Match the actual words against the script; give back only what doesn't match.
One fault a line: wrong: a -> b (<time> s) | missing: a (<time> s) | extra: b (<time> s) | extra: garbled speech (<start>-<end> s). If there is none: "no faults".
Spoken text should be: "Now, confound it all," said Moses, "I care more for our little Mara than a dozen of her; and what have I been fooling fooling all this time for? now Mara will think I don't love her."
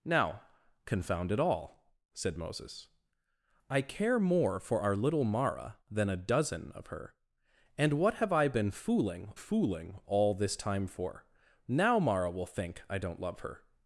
no faults